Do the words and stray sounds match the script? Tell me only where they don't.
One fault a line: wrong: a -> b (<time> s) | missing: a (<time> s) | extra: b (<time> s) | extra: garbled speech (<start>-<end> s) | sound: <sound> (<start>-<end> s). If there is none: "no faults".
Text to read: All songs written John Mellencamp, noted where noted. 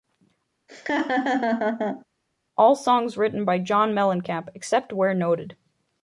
sound: laugh (0.7-2.0 s)
extra: by (3.4 s)
wrong: noted -> except (4.6 s)